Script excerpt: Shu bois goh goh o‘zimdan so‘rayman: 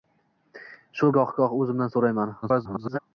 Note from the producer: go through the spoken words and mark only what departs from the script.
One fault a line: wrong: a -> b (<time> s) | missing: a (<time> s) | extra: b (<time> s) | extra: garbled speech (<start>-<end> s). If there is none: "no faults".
missing: bois (1.1 s)
extra: garbled speech (2.4-3.0 s)